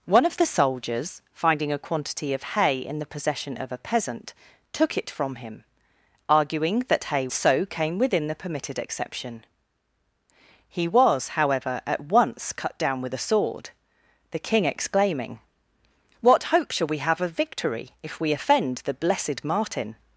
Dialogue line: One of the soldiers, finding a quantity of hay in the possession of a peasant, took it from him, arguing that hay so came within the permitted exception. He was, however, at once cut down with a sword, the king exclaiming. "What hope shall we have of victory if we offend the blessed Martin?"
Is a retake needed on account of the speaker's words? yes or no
no